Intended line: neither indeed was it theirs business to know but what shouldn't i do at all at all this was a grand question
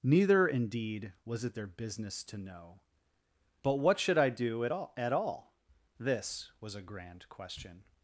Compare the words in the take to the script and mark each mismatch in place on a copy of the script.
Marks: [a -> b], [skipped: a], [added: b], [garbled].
neither indeed was it [theirs -> their] business to know but what [shouldn't -> should] i do at all at all this was a grand question